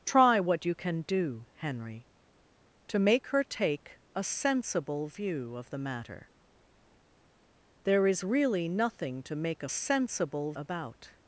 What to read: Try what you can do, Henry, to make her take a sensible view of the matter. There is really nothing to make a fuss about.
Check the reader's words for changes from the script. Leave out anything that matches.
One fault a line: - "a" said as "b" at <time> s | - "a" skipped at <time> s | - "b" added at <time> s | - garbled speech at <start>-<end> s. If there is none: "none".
- "fuss" said as "sensible" at 9.7 s